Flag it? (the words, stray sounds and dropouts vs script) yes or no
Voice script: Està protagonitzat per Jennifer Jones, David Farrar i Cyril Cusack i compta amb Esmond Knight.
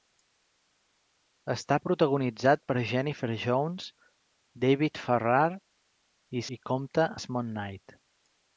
yes